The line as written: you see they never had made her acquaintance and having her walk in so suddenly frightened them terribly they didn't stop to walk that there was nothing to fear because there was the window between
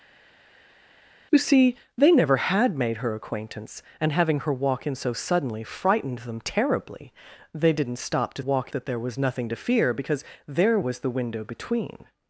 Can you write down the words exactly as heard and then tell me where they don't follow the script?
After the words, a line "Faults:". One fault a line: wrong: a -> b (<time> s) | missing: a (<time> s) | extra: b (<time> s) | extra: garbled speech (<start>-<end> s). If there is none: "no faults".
you see they never had made her acquaintance and having her walk in so suddenly frightened them terribly they didn't stop to walk that there was nothing to fear because there was the window between
Faults:
no faults